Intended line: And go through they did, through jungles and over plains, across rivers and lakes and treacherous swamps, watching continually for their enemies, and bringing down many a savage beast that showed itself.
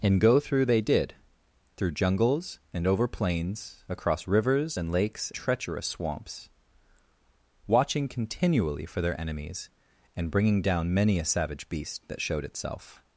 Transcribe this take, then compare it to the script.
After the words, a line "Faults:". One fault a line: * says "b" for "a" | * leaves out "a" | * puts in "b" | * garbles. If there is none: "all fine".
And go through they did, through jungles and over plains, across rivers and lakes treacherous swamps, watching continually for their enemies, and bringing down many a savage beast that showed itself.
Faults:
* leaves out "and"